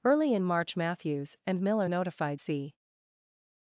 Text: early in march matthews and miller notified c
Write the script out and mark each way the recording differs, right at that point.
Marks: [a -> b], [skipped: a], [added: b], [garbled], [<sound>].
early in march matthews and miller notified c